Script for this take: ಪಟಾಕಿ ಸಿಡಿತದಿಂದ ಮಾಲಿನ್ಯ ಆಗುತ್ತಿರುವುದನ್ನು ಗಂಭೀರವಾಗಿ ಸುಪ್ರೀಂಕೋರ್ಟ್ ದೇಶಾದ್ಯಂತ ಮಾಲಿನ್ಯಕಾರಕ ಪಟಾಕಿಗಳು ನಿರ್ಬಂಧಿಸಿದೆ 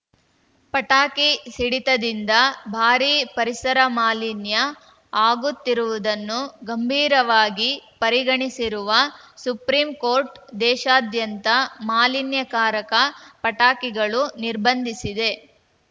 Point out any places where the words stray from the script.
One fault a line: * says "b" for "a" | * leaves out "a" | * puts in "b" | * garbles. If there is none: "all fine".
* puts in "ಭಾರೀ ಪರಿಸರ"
* puts in "ಪರಿಗಣಿಸಿರುವ"